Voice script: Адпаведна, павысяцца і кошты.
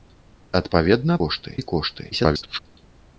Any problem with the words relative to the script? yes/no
yes